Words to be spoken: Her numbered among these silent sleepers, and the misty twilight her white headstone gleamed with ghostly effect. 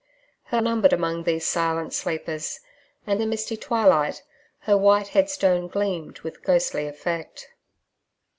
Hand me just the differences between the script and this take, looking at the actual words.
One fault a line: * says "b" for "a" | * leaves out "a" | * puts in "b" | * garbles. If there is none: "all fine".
all fine